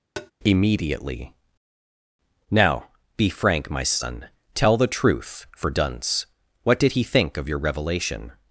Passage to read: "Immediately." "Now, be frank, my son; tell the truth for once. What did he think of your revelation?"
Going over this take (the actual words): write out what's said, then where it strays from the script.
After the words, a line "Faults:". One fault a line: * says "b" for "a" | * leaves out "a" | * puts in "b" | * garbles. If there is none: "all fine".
"Immediately." "Now, be frank, my son; tell the truth for dunce. What did he think of your revelation?"
Faults:
* says "dunce" for "once"